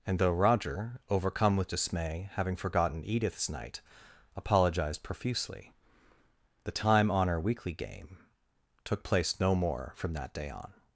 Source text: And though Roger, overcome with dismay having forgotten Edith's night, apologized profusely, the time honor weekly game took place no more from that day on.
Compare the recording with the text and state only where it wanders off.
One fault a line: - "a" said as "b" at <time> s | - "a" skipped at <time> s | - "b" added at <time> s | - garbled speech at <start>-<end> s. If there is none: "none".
none